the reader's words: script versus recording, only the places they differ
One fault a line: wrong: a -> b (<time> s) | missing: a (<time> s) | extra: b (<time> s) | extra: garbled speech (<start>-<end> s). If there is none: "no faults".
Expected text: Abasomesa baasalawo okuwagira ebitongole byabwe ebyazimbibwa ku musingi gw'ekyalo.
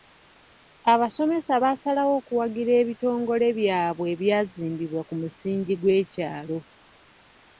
no faults